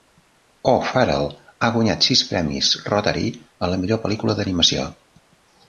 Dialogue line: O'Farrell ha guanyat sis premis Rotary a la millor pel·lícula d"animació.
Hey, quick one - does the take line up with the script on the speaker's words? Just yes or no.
yes